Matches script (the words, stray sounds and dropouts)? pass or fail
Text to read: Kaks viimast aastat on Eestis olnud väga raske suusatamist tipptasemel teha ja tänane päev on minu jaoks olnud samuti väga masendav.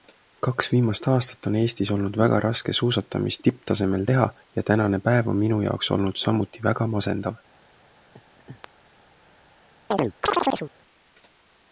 fail